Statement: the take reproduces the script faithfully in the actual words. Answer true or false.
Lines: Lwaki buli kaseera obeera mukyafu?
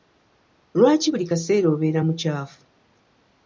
true